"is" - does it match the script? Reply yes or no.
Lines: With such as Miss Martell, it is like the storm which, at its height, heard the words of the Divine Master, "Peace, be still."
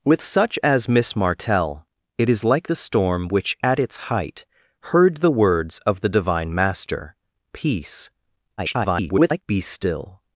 yes